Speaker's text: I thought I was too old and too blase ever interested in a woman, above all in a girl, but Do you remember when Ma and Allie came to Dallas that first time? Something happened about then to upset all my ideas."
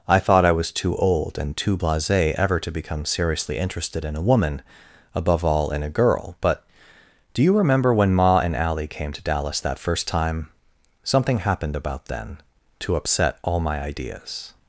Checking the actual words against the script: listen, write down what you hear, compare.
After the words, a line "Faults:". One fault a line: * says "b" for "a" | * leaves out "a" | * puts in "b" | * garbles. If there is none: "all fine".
I thought I was too old and too blase ever to become seriously interested in a woman, above all in a girl, but Do you remember when Ma and Allie came to Dallas that first time? Something happened about then to upset all my ideas."
Faults:
* puts in "to become seriously"